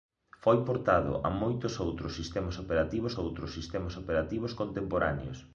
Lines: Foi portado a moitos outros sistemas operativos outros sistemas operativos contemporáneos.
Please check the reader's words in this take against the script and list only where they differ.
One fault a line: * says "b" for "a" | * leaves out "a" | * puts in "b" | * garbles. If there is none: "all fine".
all fine